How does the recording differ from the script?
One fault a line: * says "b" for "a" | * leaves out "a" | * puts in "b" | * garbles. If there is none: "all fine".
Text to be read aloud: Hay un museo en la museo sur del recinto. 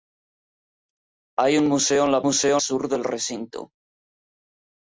all fine